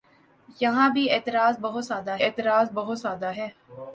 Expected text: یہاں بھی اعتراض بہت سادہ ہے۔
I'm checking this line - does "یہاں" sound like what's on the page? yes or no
yes